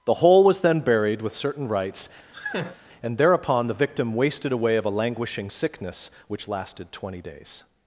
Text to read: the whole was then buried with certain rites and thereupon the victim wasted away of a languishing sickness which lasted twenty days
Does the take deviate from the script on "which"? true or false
false